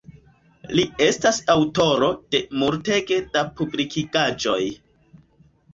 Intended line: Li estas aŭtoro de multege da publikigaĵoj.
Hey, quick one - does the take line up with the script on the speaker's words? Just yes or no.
yes